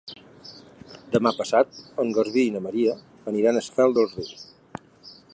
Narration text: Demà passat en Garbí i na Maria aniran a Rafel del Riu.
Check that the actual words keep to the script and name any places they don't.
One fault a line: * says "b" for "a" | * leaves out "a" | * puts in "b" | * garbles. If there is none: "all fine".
all fine